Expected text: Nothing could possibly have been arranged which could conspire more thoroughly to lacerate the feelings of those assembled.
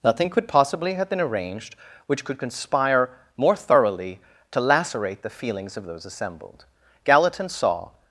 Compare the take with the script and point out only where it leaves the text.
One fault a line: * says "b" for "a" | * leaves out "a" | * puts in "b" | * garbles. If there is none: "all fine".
* puts in "Gallatin saw"